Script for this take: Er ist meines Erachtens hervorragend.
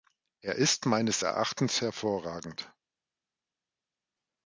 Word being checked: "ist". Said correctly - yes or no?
yes